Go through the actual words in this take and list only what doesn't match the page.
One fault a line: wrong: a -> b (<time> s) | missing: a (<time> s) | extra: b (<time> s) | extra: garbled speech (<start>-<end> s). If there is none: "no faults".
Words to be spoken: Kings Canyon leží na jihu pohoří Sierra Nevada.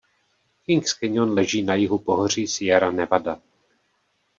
no faults